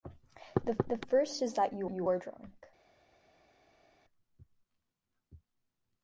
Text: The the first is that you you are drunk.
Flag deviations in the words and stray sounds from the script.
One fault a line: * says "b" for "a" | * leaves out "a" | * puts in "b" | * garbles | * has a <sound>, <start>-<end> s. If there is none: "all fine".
all fine